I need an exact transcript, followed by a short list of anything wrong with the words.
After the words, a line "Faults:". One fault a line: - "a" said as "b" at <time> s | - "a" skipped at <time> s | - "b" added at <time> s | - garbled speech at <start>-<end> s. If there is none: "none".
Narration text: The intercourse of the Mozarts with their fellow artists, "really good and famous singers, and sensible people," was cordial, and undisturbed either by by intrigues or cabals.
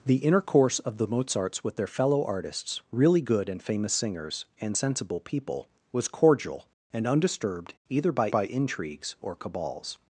The intercourse of the Mozarts with their fellow artists, "really good and famous singers, and sensible people," was cordial, and undisturbed either by by intrigues or cabals.
Faults:
none